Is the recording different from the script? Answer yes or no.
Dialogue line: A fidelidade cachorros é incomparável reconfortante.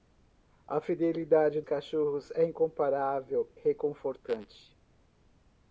no